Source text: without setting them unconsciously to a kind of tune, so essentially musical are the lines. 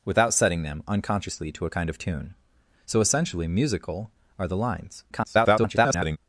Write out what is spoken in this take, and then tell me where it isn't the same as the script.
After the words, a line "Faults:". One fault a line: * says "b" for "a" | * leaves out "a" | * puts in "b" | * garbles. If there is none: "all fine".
without setting them unconsciously to a kind of tune, so essentially musical are the lines. [garbled]
Faults:
* garbles